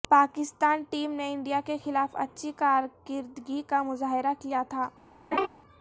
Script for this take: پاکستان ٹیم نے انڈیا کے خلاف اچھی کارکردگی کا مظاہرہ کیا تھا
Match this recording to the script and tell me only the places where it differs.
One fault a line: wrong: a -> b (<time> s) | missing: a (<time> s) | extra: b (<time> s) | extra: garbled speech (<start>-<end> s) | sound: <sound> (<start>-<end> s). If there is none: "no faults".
sound: laugh (5.3-5.5 s)